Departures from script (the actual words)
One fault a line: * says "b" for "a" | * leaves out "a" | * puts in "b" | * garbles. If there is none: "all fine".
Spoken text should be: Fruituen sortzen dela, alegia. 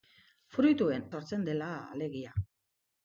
all fine